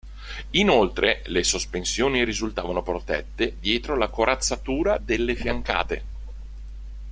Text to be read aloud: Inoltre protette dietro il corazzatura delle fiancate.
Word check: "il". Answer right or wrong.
wrong